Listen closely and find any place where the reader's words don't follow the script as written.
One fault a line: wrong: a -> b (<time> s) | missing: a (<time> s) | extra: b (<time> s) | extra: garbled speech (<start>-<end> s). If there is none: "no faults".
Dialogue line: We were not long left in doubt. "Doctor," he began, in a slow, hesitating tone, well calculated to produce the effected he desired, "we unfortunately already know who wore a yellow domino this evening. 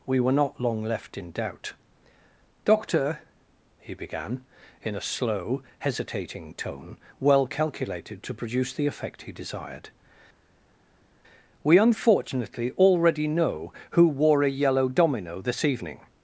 wrong: effected -> effect (8.9 s)